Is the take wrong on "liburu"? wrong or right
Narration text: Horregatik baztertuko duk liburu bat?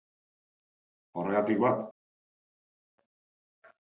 wrong